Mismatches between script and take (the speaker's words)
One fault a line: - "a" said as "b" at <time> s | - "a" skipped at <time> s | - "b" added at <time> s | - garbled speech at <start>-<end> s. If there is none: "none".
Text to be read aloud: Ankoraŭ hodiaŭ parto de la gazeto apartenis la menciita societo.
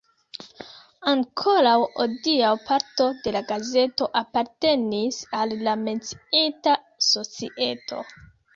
- "al" added at 5.4 s